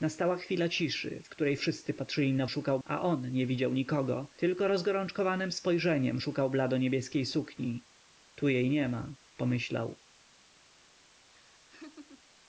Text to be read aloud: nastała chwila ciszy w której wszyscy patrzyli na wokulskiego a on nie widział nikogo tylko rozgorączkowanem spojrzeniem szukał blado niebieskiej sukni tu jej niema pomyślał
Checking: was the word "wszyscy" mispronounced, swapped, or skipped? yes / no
no